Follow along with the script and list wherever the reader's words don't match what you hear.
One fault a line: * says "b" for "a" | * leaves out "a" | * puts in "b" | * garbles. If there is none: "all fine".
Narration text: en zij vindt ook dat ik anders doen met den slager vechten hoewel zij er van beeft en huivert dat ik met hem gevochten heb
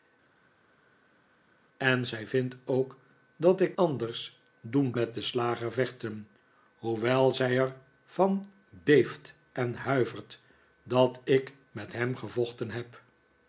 all fine